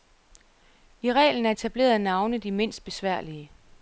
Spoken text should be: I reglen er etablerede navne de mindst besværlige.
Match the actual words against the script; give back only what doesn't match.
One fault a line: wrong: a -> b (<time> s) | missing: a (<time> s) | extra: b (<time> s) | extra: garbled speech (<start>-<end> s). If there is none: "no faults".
no faults